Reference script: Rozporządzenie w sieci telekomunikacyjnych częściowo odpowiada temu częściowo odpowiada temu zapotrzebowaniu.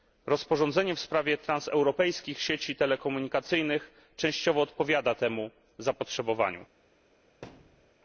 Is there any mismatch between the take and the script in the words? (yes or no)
yes